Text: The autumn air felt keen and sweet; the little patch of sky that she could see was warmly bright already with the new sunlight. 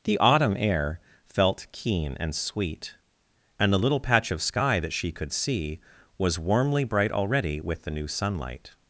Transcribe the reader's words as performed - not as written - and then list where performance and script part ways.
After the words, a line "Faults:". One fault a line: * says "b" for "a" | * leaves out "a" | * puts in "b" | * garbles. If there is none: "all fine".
The autumn air felt keen and sweet; and the little patch of sky that she could see was warmly bright already with the new sunlight.
Faults:
* puts in "and"